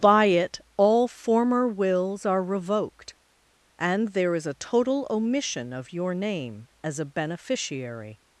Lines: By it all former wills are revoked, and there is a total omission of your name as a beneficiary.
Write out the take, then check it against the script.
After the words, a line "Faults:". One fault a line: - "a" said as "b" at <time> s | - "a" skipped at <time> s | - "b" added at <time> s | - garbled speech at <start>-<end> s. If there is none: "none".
By it all former wills are revoked, and there is a total omission of your name as a beneficiary.
Faults:
none